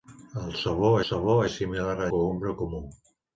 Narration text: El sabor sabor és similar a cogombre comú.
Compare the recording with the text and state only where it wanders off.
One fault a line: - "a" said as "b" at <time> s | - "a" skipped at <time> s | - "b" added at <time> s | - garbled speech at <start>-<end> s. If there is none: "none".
none